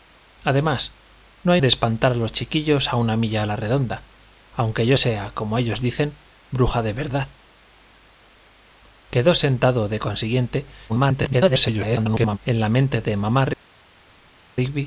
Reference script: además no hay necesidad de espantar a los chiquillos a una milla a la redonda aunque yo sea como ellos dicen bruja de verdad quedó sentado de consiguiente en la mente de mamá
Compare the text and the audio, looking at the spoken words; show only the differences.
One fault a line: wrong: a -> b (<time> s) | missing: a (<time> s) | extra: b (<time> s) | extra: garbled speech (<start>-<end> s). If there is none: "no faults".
missing: necesidad (1.6 s)
extra: garbled speech (10.9-12.4 s)